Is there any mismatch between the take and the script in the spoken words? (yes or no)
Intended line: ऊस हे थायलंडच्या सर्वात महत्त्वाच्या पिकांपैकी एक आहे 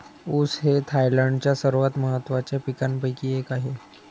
no